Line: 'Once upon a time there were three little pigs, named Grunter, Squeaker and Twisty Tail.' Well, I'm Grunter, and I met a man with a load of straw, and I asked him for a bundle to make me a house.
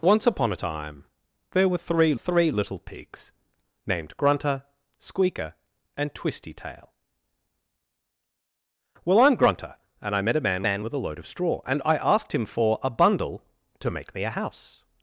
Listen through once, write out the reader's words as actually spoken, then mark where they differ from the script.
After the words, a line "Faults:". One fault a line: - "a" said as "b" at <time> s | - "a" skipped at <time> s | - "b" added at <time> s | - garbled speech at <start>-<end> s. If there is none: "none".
'Once upon a time there were three three little pigs, named Grunter, Squeaker and Twisty Tail.' Well, I'm Grunter, and I met a man man with a load of straw, and I asked him for a bundle to make me a house.
Faults:
- "three" added at 2.2 s
- "man" added at 10.7 s